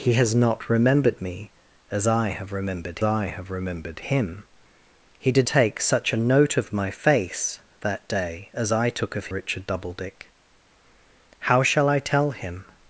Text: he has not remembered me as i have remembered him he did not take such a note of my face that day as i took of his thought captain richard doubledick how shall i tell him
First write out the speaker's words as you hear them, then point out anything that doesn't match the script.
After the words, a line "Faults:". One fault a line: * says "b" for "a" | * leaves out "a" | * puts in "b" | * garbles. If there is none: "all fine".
he has not remembered me as i have remembered i have remembered him he did take such a note of my face that day as i took of richard doubledick how shall i tell him
Faults:
* puts in "i have remembered"
* leaves out "not"
* leaves out "his thought captain"